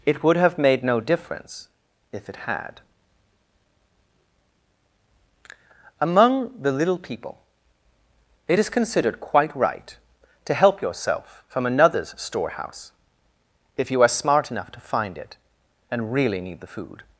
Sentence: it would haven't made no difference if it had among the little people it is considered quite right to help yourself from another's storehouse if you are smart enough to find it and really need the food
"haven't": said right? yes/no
no